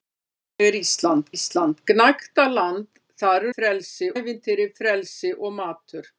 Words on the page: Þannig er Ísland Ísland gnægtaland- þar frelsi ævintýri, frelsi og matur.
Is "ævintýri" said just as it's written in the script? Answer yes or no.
yes